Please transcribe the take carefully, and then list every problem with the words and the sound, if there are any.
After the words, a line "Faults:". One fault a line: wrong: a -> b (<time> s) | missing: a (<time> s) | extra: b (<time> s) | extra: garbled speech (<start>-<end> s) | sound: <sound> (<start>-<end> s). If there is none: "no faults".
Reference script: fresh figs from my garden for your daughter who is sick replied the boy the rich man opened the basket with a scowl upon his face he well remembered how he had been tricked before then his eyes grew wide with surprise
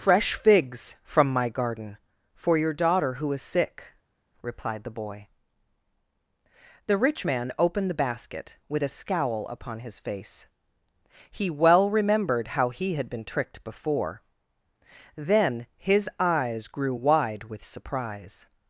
fresh figs from my garden for your daughter who is sick replied the boy the rich man opened the basket with a scowl upon his face he well remembered how he had been tricked before then his eyes grew wide with surprise
Faults:
no faults